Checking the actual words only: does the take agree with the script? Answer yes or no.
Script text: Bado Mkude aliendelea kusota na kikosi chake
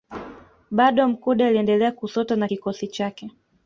yes